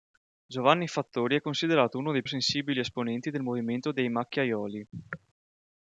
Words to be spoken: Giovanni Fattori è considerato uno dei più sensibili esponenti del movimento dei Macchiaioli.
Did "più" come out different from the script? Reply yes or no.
yes